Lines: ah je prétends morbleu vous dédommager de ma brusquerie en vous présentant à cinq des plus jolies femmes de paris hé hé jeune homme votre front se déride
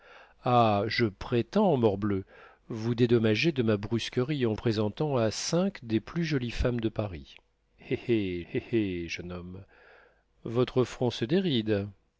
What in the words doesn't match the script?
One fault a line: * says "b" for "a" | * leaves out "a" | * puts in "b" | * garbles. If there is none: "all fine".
* leaves out "vous"
* puts in "hé hé"